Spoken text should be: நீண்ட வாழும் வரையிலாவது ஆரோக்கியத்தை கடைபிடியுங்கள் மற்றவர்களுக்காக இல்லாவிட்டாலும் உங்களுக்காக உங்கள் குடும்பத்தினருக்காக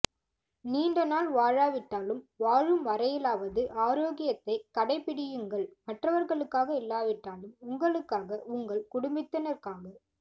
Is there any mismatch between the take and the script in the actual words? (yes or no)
yes